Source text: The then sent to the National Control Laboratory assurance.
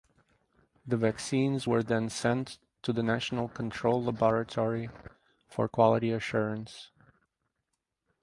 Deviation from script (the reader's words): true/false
true